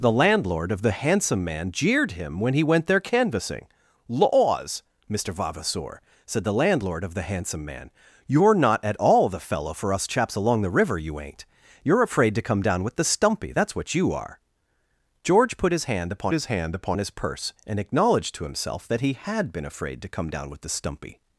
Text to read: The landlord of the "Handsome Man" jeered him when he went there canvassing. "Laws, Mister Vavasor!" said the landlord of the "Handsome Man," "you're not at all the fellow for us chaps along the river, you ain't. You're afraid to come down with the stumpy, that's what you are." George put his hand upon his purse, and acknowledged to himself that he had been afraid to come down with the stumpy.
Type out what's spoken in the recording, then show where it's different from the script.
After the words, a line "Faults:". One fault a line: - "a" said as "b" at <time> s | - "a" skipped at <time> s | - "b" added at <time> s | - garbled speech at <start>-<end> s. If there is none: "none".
The landlord of the "Handsome Man" jeered him when he went there canvassing. "Laws, Mister Vavasor!" said the landlord of the "Handsome Man," "you're not at all the fellow for us chaps along the river, you ain't. You're afraid to come down with the stumpy, that's what you are." George put his hand upon his hand upon his purse, and acknowledged to himself that he had been afraid to come down with the stumpy.
Faults:
- "hand upon his" added at 16.4 s